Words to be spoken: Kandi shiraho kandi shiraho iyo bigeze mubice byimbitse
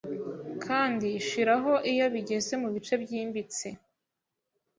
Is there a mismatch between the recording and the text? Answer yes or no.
yes